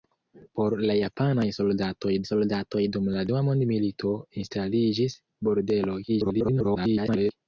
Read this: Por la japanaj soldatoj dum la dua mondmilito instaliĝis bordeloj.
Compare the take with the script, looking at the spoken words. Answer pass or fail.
fail